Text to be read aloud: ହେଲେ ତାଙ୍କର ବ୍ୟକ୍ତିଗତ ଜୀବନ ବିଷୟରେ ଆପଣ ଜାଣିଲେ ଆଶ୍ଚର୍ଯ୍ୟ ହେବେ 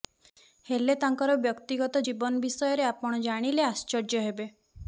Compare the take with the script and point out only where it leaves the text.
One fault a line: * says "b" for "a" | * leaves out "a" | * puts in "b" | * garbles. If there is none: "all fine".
all fine